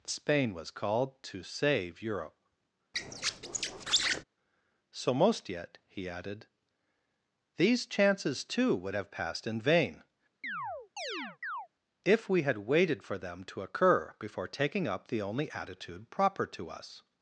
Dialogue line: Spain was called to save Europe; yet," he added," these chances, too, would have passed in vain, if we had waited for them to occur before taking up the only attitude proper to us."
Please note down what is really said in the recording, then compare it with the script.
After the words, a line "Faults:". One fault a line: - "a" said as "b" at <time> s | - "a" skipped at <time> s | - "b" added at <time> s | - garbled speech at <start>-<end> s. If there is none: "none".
Spain was called to save Europe; so most yet," he added," these chances, too, would have passed in vain, if we had waited for them to occur before taking up the only attitude proper to us."
Faults:
- "so most" added at 4.9 s